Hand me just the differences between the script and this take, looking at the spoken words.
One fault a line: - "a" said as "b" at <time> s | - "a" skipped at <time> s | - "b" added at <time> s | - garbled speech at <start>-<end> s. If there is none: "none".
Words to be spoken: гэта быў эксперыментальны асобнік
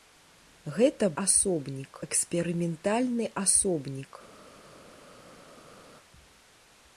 - "быў" said as "асобнік" at 1.2 s